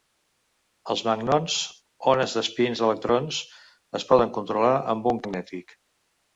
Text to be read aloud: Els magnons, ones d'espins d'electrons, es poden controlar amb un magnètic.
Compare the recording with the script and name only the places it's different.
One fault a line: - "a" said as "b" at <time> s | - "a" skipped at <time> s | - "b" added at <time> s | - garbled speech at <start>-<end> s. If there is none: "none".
none